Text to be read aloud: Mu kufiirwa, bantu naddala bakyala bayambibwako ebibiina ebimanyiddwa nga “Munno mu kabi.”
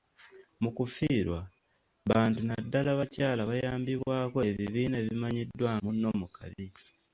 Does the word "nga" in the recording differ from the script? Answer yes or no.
yes